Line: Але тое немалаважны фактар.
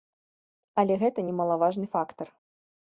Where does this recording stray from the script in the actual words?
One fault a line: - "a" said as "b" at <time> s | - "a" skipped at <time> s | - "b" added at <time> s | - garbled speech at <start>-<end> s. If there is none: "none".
- "тое" said as "гэта" at 1.0 s